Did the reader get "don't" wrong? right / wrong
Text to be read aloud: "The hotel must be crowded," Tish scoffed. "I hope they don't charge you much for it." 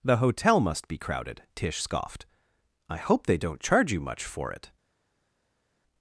right